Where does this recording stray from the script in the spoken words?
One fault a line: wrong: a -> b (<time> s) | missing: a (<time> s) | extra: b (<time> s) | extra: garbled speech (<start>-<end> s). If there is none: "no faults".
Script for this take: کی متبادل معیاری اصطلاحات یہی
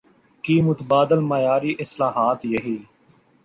no faults